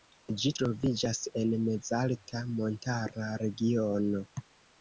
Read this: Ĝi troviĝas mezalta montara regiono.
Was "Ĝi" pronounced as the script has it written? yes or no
yes